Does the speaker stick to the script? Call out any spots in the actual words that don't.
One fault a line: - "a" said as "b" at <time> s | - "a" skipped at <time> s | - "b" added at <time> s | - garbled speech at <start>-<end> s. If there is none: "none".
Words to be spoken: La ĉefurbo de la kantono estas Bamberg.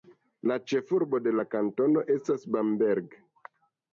none